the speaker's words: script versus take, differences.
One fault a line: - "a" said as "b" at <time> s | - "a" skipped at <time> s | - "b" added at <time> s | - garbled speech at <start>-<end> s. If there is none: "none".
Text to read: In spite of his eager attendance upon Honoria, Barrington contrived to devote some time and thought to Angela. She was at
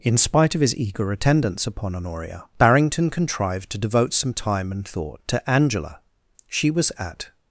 none